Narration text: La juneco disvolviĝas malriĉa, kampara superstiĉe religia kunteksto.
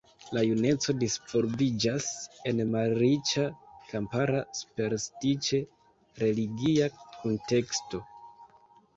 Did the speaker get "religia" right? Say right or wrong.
right